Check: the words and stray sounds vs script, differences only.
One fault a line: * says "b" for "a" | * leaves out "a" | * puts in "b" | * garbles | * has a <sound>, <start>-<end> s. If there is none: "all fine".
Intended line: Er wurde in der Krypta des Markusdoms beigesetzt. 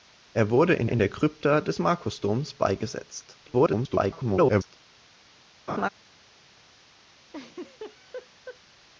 * puts in "in"
* garbles
* has a laugh, 5.7-5.9 s
* has a laugh, 7.3-8.6 s